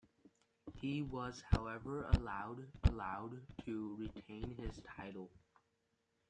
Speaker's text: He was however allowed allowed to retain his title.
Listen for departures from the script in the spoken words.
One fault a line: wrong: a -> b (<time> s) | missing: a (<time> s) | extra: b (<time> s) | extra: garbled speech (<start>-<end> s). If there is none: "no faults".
no faults